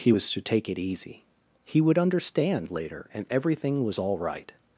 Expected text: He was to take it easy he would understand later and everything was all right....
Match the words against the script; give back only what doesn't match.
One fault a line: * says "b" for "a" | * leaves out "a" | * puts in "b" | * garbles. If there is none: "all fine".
all fine